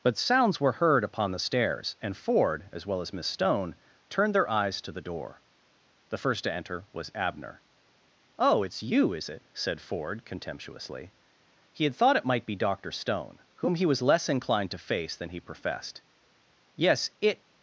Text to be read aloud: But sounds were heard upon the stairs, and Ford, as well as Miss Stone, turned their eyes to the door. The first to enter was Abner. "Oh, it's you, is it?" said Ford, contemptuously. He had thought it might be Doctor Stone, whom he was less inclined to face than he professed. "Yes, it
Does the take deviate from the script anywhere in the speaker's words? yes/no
no